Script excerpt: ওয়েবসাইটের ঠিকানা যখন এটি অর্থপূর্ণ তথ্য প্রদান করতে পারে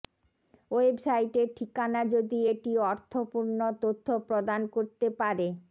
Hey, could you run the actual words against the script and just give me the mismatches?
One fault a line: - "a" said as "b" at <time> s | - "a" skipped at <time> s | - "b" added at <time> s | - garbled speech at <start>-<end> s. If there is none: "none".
- "যখন" said as "যদি" at 2.1 s